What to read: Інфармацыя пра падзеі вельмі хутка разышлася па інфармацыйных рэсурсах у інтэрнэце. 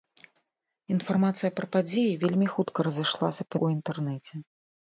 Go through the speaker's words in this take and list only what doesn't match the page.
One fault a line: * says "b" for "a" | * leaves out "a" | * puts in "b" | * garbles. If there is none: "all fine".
* leaves out "інфармацыйных рэсурсах"